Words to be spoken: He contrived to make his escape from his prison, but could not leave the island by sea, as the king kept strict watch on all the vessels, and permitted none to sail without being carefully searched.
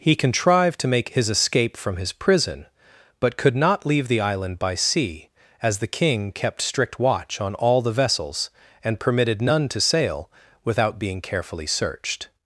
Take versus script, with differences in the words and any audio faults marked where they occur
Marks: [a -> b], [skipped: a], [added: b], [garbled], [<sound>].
He contrived to make his escape from his prison, but could not leave the island by sea, as the king kept strict watch on all the vessels, and permitted none to sail without being carefully searched.